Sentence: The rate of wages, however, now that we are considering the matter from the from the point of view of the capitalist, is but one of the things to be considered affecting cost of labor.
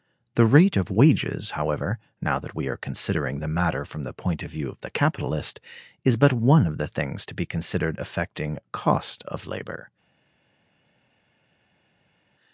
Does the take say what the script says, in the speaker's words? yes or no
no